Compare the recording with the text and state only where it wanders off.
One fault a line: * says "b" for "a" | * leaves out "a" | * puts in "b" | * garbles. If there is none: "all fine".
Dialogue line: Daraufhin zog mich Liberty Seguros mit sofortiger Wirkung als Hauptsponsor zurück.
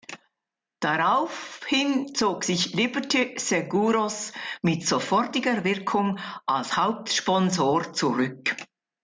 * says "sich" for "mich"